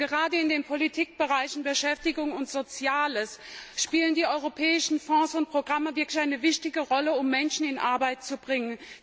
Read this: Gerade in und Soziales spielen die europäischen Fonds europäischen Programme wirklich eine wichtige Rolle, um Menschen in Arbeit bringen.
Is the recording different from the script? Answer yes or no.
yes